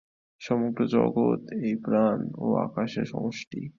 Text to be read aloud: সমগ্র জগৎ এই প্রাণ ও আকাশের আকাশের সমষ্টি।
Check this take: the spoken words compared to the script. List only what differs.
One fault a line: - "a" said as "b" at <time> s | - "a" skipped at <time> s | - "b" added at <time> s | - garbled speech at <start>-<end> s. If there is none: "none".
- "আকাশের" skipped at 3.1 s